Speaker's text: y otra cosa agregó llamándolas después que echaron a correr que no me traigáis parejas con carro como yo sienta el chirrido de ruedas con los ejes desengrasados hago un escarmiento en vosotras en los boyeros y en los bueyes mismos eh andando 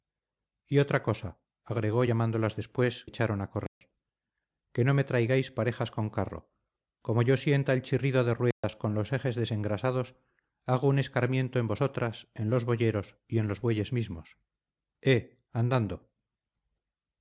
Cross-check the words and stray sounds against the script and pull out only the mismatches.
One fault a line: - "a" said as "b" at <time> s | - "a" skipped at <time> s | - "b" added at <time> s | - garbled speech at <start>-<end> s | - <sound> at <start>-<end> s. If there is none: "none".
- "que" skipped at 3.1 s
- dropout at 3.7-3.8 s
- dropout at 8.5-8.6 s